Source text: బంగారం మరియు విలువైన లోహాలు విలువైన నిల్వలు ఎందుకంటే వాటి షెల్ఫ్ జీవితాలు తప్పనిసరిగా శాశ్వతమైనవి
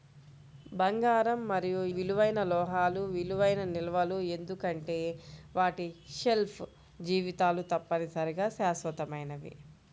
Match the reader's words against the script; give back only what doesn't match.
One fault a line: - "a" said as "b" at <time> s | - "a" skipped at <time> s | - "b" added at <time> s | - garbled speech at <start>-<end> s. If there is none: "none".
none